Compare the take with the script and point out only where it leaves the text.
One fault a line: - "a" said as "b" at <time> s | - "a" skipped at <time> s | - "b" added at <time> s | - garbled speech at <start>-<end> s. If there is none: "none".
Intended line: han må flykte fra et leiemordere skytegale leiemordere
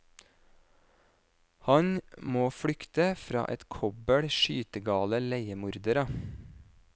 - "leiemordere" said as "kobbel" at 3.8 s